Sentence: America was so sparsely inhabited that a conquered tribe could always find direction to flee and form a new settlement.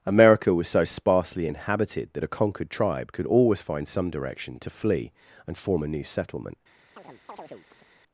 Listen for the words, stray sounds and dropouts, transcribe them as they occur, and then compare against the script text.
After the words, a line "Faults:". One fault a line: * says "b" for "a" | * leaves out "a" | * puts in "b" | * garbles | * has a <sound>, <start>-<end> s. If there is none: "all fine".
America was so sparsely inhabited that a conquered tribe could always find some direction to flee and form a new settlement.
Faults:
* puts in "some"
* has a chirp, 7.0-7.9 s